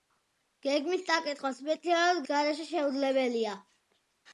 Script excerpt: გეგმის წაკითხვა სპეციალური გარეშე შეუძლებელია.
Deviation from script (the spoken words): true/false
false